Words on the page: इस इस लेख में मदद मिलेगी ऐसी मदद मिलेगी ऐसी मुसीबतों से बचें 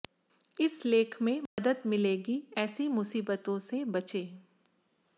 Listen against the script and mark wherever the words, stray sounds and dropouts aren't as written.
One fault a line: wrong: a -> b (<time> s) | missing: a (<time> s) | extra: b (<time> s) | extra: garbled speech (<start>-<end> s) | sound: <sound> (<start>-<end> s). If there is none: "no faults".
missing: इस (0.8 s)
sound: dropout (1.5-1.6 s)
missing: मदद मिलेगी ऐसी (2.9 s)